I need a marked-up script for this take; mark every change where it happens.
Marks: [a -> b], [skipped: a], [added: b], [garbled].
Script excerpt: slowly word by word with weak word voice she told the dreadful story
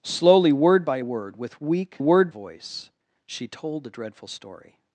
slowly word by word with weak word voice she told the dreadful story